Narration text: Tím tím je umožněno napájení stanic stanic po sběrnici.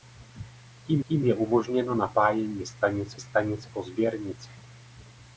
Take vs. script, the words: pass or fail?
pass